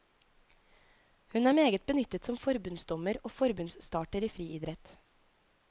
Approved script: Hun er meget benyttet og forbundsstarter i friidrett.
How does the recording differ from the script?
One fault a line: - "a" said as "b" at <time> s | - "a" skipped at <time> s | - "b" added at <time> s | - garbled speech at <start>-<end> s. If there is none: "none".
- "som forbundsdommer" added at 2.2 s